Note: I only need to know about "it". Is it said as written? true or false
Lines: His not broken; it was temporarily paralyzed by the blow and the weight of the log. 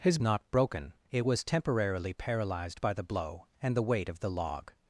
true